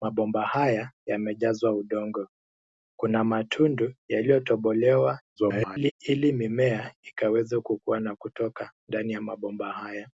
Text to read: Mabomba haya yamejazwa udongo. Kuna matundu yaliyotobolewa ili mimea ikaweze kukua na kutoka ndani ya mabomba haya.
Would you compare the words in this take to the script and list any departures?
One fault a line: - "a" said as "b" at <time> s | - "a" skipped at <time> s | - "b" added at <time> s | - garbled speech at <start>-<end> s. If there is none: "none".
- garbled speech at 5.4-5.9 s